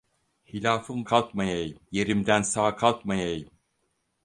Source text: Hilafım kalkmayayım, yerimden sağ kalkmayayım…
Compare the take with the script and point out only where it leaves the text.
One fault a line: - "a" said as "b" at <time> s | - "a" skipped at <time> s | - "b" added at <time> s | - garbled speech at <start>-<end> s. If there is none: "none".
none